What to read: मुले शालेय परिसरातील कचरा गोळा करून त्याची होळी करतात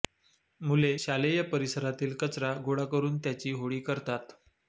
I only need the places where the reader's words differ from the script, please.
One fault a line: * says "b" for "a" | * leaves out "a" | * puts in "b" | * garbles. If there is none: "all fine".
all fine